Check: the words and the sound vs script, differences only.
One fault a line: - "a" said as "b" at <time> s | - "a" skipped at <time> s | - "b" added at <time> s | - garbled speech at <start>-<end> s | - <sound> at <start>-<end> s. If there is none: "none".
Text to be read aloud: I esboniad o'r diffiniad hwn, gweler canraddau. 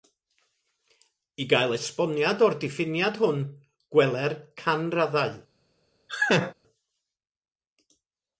- "gael" added at 1.5 s
- laugh at 6.1-6.5 s